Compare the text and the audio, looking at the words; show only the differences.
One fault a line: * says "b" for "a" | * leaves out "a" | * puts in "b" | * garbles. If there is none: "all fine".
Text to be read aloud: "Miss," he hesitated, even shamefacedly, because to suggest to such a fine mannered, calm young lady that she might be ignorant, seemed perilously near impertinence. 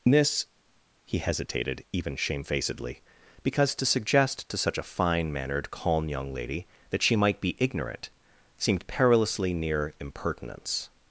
* says "This" for "Miss"